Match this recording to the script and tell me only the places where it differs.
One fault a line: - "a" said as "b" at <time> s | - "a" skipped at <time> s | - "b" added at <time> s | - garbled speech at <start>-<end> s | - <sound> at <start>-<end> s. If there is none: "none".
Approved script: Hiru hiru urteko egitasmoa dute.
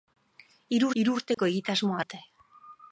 - dropout at 1.3-1.4 s